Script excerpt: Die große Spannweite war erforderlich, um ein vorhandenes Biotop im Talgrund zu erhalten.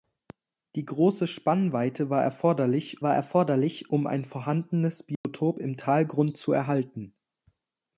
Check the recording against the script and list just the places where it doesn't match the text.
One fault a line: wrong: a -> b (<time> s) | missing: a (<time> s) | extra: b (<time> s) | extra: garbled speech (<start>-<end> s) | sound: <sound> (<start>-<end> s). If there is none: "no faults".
extra: war erforderlich (3.0 s)
sound: dropout (5.1-5.2 s)